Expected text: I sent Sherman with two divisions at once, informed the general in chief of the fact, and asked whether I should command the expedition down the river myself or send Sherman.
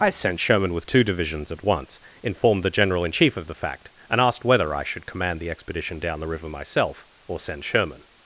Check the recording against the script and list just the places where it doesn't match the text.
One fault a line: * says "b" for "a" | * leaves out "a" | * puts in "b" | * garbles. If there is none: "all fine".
all fine